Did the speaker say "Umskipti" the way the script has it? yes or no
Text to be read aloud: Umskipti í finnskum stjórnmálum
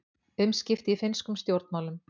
yes